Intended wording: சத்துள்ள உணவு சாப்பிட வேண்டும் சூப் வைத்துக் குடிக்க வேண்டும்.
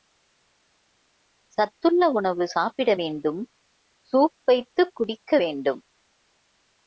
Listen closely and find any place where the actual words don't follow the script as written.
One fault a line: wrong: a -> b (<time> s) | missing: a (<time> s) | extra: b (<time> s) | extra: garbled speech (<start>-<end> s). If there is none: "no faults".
no faults